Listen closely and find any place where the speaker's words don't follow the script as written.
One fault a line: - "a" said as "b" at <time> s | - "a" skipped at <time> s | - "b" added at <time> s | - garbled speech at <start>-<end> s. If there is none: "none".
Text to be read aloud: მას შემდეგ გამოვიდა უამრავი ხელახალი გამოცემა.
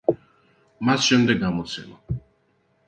- "გამოვიდა უამრავი ხელახალი" skipped at 1.4 s